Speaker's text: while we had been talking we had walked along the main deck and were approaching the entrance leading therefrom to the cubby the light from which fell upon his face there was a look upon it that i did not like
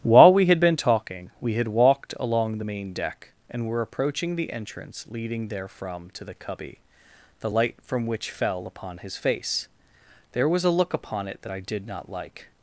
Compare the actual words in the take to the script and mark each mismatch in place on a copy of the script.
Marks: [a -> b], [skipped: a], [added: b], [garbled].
while we had been talking we had walked along the main deck and were approaching the entrance leading therefrom to the cubby the light from which fell upon his face there was a look upon it that i did not like